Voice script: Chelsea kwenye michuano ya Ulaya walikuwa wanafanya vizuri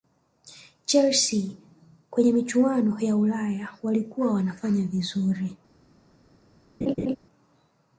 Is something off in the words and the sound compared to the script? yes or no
yes